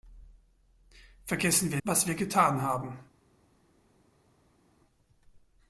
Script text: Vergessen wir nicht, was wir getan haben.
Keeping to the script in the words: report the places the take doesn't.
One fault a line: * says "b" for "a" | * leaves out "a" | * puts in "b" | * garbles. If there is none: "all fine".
* leaves out "nicht"